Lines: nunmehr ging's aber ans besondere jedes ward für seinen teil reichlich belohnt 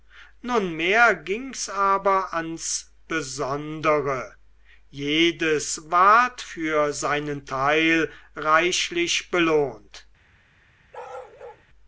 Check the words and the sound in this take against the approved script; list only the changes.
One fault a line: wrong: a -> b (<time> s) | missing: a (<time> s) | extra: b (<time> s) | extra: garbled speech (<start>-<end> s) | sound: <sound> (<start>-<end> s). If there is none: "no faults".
sound: bark (10.9-11.6 s)